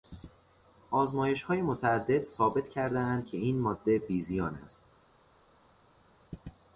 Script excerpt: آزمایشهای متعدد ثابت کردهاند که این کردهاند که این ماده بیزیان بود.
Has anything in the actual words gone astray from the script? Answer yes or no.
yes